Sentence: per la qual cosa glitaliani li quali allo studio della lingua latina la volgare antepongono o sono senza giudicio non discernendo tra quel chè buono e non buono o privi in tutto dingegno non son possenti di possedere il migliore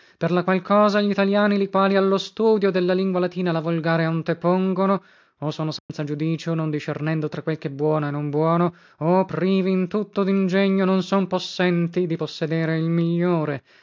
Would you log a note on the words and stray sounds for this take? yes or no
yes